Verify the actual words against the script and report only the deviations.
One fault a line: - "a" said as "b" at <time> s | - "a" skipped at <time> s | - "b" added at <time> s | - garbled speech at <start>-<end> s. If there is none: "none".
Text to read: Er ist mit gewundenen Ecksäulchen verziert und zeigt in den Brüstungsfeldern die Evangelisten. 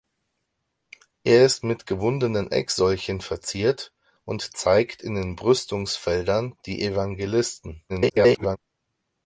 - garbled speech at 7.9-8.6 s